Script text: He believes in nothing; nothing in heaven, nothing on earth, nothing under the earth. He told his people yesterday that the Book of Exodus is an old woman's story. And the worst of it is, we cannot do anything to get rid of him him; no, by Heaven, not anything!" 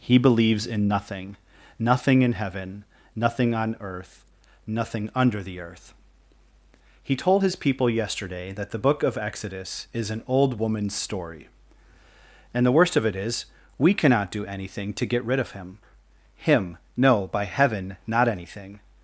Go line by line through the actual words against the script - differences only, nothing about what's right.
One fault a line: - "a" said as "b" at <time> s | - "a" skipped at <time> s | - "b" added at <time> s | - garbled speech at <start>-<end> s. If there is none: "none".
none